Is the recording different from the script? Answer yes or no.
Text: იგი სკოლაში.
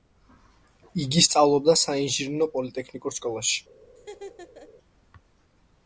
yes